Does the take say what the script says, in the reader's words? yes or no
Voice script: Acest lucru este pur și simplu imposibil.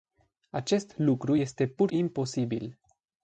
no